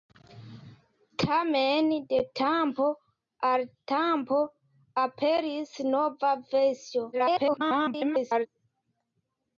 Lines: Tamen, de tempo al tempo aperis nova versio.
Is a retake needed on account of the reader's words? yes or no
yes